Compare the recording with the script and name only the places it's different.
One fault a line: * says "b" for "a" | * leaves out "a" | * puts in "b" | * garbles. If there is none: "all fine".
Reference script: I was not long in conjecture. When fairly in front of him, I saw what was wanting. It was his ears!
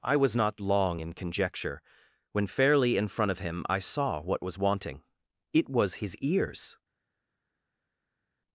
all fine